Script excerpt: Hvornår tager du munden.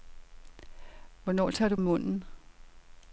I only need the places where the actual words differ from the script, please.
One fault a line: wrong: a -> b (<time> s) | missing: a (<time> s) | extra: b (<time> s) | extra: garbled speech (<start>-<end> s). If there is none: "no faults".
no faults